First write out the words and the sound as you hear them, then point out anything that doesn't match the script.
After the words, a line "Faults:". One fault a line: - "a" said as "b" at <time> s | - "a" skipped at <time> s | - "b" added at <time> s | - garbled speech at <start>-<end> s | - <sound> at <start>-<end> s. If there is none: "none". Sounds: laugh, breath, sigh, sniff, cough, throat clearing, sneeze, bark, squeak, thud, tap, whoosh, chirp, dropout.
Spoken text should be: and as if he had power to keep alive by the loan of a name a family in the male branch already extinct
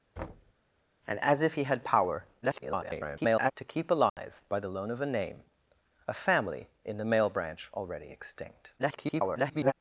and as if he had power [garbled] to keep alive by the loan of a name a family in the male branch already extinct [garbled]
Faults:
- thud at 0.2-0.5 s
- garbled speech at 2.4-3.5 s
- dropout at 4.1-4.2 s
- garbled speech at 8.8-9.7 s